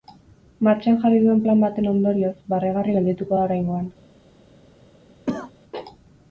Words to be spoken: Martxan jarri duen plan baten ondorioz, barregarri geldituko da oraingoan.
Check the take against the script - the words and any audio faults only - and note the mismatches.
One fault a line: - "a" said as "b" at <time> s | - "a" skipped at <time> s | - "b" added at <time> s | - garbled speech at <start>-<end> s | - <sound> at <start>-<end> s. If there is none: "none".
- cough at 5.3-5.5 s